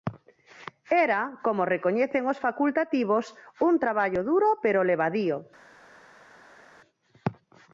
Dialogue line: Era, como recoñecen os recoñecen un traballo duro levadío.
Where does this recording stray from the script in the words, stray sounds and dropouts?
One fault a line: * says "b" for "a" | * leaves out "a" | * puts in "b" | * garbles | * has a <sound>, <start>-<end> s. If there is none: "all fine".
* says "facultativos" for "recoñecen"
* puts in "pero"